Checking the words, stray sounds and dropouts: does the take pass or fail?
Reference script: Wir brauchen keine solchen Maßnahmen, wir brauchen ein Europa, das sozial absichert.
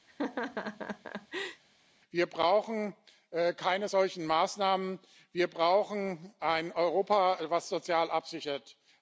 fail